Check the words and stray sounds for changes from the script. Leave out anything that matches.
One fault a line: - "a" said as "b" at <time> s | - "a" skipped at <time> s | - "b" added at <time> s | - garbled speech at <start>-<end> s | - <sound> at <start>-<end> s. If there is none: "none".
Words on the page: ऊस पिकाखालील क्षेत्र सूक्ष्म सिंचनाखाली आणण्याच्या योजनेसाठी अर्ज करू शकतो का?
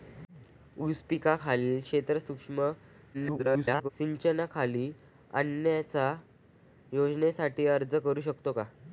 - garbled speech at 3.1-3.9 s